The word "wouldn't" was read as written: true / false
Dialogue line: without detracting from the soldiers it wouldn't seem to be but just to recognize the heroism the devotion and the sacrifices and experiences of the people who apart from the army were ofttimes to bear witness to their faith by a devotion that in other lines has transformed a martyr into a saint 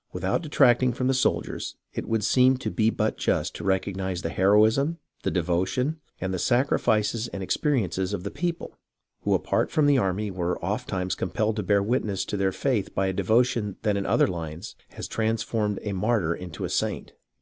false